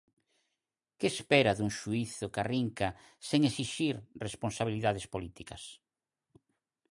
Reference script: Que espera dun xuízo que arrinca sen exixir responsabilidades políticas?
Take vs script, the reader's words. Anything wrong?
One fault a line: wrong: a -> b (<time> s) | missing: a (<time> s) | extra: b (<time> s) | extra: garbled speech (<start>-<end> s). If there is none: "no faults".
no faults